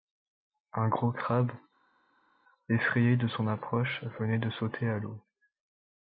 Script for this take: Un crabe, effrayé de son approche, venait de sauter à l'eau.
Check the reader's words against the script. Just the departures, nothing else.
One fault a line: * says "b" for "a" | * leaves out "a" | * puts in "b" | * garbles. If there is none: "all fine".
* puts in "gros"